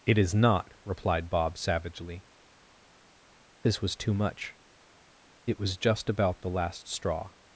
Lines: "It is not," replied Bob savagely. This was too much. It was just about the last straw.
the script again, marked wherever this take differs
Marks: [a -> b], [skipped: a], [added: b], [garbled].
"It is not," replied Bob savagely. This was too much. It was just about the last straw.